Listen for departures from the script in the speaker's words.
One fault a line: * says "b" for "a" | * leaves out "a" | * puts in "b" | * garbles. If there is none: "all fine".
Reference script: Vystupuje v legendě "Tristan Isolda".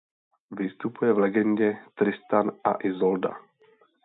* puts in "a"